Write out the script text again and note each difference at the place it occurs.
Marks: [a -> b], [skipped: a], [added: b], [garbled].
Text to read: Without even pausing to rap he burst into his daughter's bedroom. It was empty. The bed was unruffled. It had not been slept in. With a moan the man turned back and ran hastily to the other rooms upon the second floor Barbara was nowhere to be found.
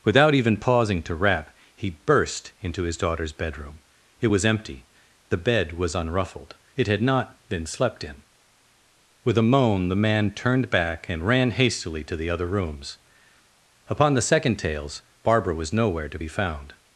Without even pausing to rap he burst into his daughter's bedroom. It was empty. The bed was unruffled. It had not been slept in. With a moan the man turned back and ran hastily to the other rooms upon the second [floor -> tales] Barbara was nowhere to be found.